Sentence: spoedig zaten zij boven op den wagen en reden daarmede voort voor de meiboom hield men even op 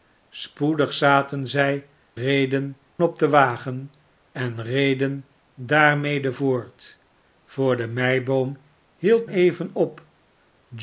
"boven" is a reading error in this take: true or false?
true